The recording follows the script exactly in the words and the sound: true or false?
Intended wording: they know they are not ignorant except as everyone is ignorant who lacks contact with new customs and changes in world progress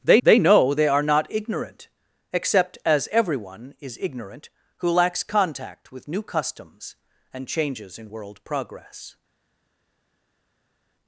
false